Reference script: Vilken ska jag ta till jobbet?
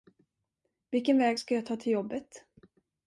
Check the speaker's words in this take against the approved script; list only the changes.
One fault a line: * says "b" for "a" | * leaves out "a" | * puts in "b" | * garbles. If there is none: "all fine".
* puts in "väg"